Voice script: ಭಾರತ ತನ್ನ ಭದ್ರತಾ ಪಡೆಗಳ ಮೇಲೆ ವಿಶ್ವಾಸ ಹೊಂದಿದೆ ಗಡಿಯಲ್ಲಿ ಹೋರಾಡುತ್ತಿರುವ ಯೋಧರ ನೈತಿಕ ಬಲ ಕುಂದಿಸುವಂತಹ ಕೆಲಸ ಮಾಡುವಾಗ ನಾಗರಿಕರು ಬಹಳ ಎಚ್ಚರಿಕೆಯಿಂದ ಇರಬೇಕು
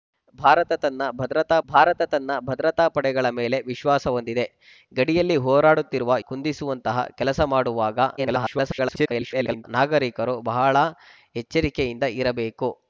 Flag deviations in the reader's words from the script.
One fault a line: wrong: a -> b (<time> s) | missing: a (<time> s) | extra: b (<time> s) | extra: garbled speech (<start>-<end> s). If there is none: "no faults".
extra: ಭಾರತ ತನ್ನ ಭದ್ರತಾ (1.7 s)
missing: ಯೋಧರ ನೈತಿಕ ಬಲ (6.2 s)
extra: garbled speech (8.2-9.6 s)